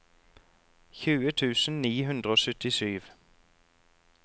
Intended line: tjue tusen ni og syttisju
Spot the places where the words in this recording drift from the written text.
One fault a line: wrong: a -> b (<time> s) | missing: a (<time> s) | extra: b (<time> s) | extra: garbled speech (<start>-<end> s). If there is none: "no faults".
extra: hundre (2.1 s)